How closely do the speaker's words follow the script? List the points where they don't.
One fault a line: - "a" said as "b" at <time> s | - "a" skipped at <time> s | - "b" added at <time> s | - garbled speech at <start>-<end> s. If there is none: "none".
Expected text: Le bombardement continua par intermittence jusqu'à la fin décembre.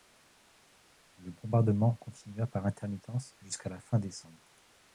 none